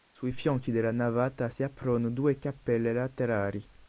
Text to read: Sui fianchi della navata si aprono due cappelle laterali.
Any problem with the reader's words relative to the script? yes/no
no